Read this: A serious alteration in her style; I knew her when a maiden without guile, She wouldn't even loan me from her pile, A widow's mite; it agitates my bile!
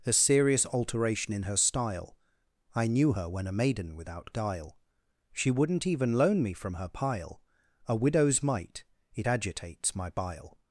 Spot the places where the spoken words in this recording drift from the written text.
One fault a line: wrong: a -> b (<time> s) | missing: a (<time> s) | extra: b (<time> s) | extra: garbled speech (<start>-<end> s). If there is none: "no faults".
no faults